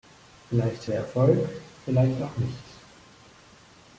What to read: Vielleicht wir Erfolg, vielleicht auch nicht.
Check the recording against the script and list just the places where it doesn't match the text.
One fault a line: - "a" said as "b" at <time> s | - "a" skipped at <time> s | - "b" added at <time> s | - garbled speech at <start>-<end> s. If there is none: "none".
none